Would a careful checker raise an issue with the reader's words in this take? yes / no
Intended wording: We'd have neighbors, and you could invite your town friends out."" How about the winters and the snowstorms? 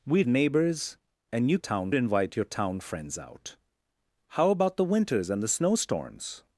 yes